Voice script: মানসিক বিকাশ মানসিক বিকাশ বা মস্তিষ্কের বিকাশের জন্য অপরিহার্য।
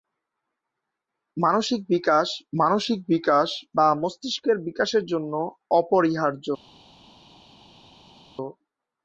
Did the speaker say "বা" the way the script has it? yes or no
yes